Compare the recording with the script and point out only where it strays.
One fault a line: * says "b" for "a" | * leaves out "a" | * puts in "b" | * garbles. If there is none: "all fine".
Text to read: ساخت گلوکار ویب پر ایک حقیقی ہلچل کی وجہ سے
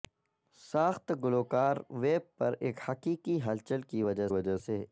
* puts in "وجہ"